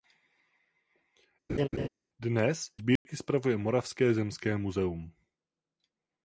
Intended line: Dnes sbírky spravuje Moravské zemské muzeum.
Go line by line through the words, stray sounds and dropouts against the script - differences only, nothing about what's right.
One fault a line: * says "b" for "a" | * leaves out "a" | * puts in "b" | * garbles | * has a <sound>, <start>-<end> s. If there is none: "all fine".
* has a laugh, 1.5-1.9 s
* has a dropout, 3.0-3.1 s